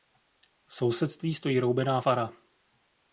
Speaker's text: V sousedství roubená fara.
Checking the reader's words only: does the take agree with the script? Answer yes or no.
no